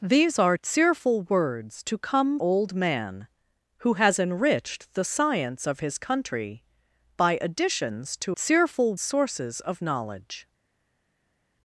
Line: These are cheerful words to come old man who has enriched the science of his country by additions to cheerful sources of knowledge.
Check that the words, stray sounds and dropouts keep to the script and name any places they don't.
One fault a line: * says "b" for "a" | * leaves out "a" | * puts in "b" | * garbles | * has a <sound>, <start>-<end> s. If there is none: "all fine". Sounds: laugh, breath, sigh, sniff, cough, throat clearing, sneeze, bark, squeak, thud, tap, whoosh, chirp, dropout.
all fine